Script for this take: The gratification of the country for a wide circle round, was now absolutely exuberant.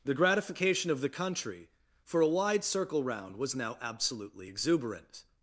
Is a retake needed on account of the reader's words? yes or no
no